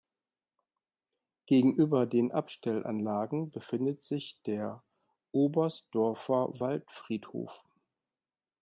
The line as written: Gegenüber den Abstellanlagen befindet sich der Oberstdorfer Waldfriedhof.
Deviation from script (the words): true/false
false